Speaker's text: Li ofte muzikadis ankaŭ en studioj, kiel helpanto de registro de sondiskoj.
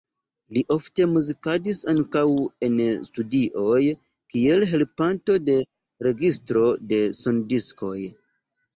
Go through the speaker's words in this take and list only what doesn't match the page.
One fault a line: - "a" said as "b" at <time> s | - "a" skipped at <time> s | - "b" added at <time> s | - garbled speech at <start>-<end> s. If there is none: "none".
none